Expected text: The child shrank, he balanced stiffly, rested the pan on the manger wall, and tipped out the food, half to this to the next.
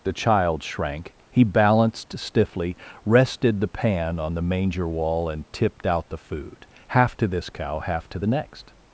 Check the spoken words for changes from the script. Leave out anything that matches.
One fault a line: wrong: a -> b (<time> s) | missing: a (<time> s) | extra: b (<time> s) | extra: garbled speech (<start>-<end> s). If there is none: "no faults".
extra: cow half (7.5 s)